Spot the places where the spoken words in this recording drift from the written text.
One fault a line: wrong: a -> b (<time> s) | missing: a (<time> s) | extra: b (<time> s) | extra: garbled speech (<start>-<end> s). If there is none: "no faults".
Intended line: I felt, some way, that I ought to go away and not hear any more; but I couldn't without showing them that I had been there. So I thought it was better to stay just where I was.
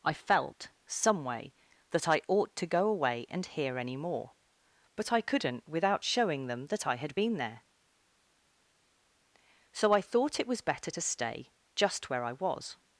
missing: not (3.5 s)